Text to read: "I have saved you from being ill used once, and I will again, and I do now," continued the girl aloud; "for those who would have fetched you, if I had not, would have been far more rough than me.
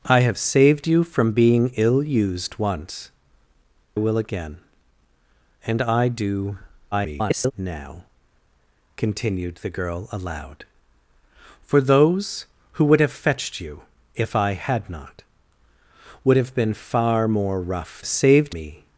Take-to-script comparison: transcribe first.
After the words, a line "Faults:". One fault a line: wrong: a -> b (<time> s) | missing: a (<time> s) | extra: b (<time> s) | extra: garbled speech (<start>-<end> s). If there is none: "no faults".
"I have saved you from being ill used once, will again, and I do [garbled] now," continued the girl aloud; "for those who would have fetched you, if I had not, would have been far more rough saved me.
Faults:
missing: and I (3.1 s)
extra: garbled speech (6.9-7.5 s)
wrong: than -> saved (18.0 s)